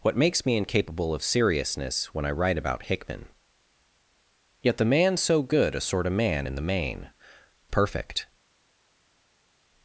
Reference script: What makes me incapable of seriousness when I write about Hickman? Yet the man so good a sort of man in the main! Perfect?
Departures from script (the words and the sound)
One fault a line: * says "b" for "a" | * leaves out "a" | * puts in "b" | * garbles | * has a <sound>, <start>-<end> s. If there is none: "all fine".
all fine